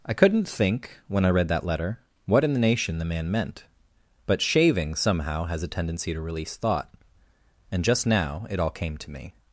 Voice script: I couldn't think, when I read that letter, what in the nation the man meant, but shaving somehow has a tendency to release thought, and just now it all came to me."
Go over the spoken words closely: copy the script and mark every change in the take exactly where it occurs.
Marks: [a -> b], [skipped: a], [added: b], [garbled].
I couldn't think, when I read that letter, what in the nation the man meant, but shaving somehow has a tendency to release thought, and just now it all came to me."